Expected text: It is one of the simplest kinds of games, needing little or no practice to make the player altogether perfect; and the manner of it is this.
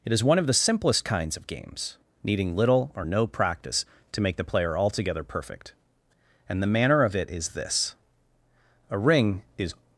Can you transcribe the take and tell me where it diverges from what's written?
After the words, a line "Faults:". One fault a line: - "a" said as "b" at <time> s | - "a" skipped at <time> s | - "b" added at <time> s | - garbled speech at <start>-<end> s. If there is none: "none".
It is one of the simplest kinds of games, needing little or no practice to make the player altogether perfect; and the manner of it is this. A ring is
Faults:
- "A ring is" added at 8.9 s